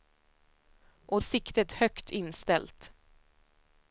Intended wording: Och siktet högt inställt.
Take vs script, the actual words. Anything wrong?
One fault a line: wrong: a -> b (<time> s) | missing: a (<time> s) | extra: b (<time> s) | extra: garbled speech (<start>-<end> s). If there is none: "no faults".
no faults